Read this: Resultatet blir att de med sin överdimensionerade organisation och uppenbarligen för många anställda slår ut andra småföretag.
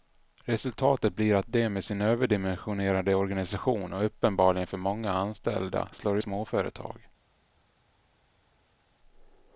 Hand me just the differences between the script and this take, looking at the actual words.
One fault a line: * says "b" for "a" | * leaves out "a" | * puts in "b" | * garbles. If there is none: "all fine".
* leaves out "ut andra"